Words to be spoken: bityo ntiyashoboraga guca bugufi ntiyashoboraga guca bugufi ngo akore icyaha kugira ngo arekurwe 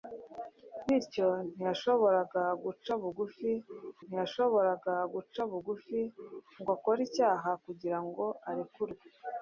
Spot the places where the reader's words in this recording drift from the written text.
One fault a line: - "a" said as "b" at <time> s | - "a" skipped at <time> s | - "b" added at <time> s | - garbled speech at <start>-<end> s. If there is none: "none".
none